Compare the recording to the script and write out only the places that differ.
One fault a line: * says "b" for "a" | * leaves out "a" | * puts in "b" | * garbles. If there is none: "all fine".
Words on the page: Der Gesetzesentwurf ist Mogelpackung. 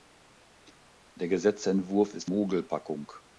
all fine